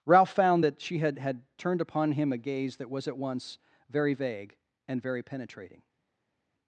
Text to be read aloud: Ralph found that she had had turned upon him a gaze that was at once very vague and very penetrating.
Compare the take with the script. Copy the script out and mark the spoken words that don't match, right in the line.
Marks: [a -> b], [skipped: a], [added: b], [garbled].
Ralph found that she had had turned upon him a gaze that was at once very vague and very penetrating.